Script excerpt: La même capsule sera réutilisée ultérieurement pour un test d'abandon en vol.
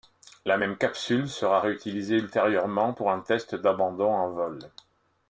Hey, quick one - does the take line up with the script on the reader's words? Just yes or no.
yes